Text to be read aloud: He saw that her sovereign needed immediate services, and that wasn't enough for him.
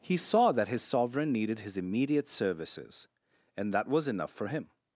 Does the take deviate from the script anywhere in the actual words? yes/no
yes